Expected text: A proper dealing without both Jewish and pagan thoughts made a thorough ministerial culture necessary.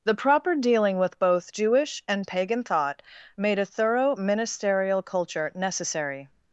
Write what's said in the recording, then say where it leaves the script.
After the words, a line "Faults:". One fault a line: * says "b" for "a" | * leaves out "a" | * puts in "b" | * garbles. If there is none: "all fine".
The proper dealing with both Jewish and pagan thought made a thorough ministerial culture necessary.
Faults:
* says "The" for "A"
* says "with" for "without"
* says "thought" for "thoughts"